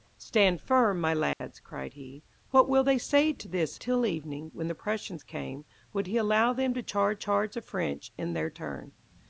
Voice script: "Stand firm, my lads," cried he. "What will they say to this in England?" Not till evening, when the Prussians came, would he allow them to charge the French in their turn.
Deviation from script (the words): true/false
true